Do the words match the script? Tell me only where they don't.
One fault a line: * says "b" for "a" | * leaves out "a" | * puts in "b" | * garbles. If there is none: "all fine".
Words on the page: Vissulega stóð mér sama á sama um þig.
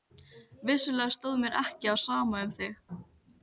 * says "ekki" for "sama"